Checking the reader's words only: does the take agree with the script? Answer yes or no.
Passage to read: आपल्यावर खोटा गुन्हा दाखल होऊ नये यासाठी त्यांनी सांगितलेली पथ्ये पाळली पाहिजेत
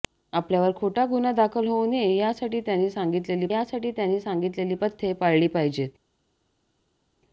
no